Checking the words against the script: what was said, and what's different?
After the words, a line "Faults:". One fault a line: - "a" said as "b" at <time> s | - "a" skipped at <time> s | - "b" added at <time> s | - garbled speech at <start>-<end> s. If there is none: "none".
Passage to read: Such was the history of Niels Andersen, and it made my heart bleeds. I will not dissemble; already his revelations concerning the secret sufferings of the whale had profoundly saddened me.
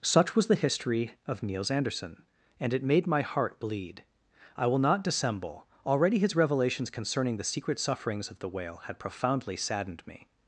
Such was the history of Niels Andersen, and it made my heart bleed. I will not dissemble; already his revelations concerning the secret sufferings of the whale had profoundly saddened me.
Faults:
- "bleeds" said as "bleed" at 3.6 s